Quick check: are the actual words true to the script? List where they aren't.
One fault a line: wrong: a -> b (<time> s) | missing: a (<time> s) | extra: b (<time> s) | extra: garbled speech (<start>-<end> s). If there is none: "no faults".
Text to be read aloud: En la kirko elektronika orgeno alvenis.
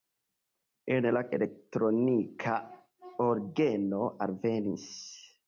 missing: kirko (1.2 s)